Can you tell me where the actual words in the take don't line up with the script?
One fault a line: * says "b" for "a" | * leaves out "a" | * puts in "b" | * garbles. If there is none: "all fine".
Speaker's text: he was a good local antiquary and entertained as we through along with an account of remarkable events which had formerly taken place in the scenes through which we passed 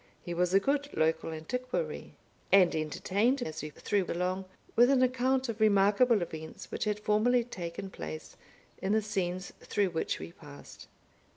all fine